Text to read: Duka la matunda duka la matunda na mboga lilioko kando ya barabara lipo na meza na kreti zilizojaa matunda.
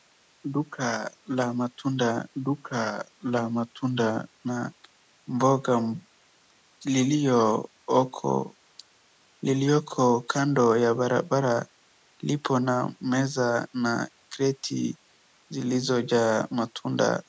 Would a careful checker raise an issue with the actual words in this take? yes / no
no